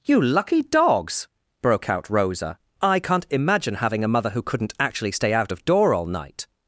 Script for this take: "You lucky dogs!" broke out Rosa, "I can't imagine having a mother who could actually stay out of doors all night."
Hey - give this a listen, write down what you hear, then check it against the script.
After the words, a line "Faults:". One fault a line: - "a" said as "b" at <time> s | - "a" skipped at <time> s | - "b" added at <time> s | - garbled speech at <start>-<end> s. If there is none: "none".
"You lucky dogs!" broke out Rosa, "I can't imagine having a mother who couldn't actually stay out of door all night."
Faults:
- "could" said as "couldn't" at 4.4 s
- "doors" said as "door" at 5.6 s